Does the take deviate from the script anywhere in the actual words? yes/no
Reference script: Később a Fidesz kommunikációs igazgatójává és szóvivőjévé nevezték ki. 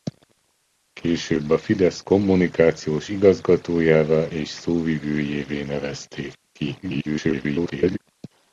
yes